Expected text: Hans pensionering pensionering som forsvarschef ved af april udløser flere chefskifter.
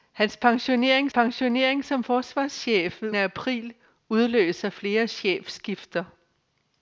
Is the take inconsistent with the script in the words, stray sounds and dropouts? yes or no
no